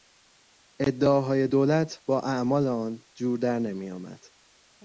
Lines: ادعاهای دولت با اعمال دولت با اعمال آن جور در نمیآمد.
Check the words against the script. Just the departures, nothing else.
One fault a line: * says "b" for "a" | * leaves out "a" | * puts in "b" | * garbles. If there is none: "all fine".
* leaves out "دولت با اعمال"